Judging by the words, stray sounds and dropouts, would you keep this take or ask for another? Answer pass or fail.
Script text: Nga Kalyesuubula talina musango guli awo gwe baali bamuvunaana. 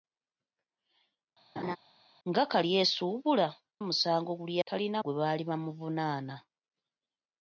fail